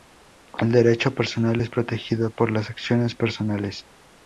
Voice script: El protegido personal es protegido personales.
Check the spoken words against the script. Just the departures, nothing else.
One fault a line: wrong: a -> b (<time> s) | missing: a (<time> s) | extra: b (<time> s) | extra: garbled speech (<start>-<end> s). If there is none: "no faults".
wrong: protegido -> derecho (0.7 s)
extra: por las acciones (2.3 s)